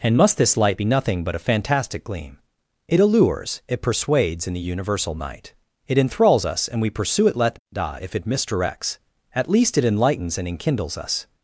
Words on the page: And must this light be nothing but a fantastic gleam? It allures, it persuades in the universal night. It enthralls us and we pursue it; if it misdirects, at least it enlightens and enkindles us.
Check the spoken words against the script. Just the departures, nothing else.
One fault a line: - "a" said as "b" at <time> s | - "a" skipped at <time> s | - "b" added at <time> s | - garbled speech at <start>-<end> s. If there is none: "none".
- "let da" added at 7.3 s